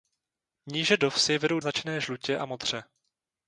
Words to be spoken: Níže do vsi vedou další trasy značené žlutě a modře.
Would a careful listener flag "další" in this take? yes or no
yes